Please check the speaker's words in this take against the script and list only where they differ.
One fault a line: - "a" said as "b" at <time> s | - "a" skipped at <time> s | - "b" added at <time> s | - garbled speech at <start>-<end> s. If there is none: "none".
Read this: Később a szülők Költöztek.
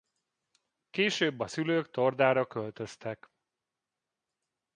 - "Tordára" added at 1.9 s